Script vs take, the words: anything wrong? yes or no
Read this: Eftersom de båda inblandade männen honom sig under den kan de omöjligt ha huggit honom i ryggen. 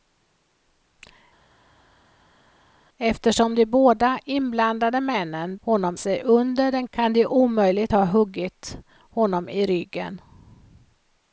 no